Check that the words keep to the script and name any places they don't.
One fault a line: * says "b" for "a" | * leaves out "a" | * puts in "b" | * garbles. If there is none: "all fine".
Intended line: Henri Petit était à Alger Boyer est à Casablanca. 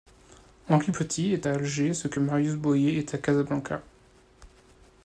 * says "est" for "était"
* puts in "ce que Marius"